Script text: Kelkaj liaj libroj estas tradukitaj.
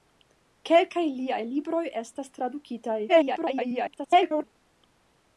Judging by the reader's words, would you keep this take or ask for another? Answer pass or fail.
fail